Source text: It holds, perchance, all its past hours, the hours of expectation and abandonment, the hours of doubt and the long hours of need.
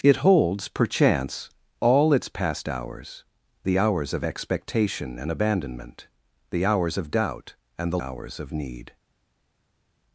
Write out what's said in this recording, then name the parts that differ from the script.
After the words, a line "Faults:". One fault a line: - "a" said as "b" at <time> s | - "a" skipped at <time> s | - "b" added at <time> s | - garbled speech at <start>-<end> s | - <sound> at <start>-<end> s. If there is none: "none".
It holds, perchance, all its past hours, the hours of expectation and abandonment, the hours of doubt and the hours of need.
Faults:
- "long" skipped at 8.0 s